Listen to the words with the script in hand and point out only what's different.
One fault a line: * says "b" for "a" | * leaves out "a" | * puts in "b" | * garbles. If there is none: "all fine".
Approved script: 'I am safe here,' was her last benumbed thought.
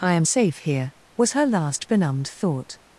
all fine